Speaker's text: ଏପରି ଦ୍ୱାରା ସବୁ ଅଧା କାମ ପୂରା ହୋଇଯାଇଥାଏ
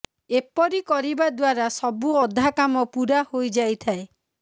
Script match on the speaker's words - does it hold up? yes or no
no